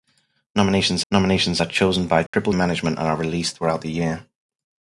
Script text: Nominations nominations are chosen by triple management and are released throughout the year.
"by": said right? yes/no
yes